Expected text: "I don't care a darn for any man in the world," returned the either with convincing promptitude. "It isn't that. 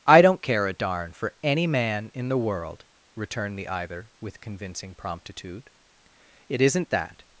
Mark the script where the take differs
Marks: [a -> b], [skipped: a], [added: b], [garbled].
"I don't care a darn for any man in the world," returned the either with convincing promptitude. "It isn't that.